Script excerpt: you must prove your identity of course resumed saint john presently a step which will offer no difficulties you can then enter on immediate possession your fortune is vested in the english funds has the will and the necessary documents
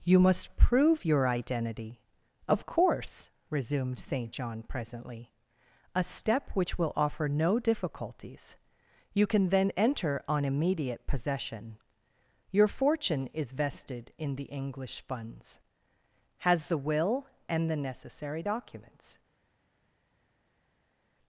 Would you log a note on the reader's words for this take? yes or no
no